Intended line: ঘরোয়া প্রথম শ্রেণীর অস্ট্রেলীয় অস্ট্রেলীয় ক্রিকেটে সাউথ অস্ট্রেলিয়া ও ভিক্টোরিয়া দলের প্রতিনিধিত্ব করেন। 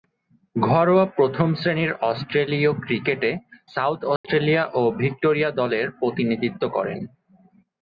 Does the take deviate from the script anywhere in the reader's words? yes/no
yes